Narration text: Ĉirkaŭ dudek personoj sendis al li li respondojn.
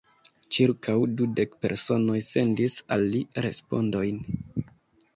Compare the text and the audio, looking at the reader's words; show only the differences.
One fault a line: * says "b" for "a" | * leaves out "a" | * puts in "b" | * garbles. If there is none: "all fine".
* leaves out "li"